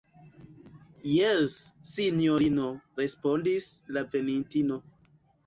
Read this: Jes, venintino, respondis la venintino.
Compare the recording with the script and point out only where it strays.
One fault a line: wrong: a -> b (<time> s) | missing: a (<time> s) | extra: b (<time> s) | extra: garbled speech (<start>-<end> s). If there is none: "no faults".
wrong: venintino -> sinjorino (1.9 s)